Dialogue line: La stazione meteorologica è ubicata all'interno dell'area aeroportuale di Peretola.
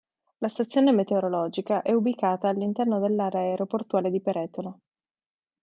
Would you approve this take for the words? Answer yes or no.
yes